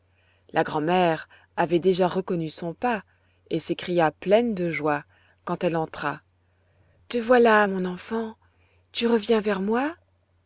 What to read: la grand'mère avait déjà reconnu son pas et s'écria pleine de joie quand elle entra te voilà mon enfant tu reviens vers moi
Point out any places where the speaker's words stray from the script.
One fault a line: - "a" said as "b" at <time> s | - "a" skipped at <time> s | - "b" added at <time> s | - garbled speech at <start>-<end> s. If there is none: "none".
none